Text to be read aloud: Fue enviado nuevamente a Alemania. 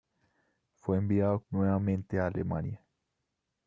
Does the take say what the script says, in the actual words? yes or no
yes